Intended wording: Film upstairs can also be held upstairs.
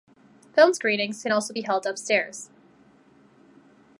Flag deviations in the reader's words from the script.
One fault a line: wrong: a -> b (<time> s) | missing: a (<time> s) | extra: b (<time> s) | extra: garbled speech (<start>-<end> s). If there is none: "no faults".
wrong: upstairs -> screenings (0.7 s)